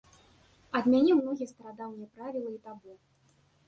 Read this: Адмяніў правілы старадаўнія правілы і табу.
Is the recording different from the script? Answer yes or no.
yes